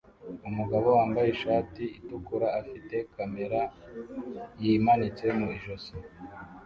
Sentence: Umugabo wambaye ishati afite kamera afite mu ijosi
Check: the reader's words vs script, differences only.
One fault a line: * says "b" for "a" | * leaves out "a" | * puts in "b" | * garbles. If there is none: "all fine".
* puts in "itukura"
* says "yimanitse" for "afite"